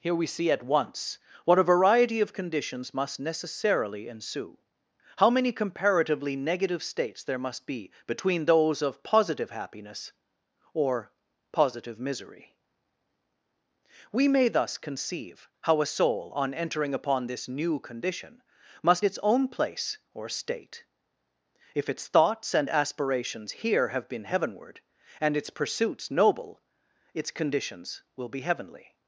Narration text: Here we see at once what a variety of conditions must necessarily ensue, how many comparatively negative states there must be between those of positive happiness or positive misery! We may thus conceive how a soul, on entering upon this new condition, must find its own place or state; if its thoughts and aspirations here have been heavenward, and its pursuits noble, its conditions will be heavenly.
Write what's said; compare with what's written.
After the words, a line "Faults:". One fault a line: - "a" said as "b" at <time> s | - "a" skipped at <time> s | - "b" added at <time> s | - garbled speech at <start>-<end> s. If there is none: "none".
Here we see at once what a variety of conditions must necessarily ensue, how many comparatively negative states there must be between those of positive happiness or positive misery! We may thus conceive how a soul, on entering upon this new condition, must its own place or state; if its thoughts and aspirations here have been heavenward, and its pursuits noble, its conditions will be heavenly.
Faults:
- "find" skipped at 19.1 s